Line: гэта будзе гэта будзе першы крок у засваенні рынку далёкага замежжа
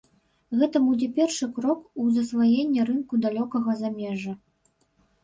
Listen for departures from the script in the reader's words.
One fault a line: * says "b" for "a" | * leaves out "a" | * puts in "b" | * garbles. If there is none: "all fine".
* leaves out "гэта будзе"